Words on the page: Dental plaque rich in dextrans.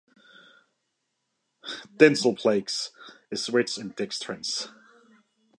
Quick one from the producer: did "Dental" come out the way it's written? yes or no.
yes